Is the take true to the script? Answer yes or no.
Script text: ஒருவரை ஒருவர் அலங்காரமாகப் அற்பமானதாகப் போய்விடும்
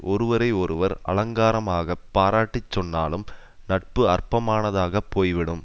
no